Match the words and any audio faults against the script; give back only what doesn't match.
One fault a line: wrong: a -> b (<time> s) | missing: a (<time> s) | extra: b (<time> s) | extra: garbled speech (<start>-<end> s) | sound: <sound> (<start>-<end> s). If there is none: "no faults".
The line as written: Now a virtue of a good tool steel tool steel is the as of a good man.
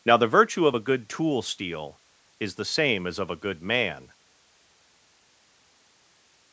wrong: a -> the (0.2 s)
missing: tool steel (2.0 s)
extra: same (2.6 s)